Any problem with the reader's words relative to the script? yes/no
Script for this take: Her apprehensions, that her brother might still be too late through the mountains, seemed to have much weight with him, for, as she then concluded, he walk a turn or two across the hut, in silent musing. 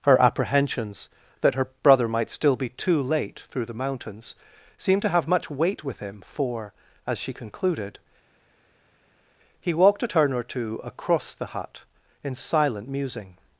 yes